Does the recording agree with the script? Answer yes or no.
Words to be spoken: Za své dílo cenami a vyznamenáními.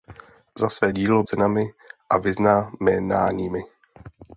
yes